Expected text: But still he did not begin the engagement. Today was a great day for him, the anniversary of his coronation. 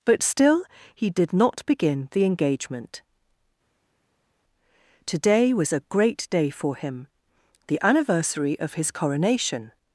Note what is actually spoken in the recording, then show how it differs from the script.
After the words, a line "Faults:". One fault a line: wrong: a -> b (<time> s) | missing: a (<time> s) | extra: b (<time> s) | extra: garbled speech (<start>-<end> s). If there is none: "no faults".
But still he did not begin the engagement. Today was a great day for him, the anniversary of his coronation.
Faults:
no faults